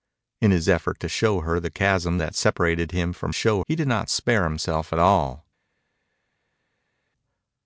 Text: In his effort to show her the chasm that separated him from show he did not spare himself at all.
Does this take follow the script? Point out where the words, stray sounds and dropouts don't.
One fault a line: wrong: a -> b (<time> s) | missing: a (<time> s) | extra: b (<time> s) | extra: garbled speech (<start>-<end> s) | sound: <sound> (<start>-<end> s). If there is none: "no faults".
no faults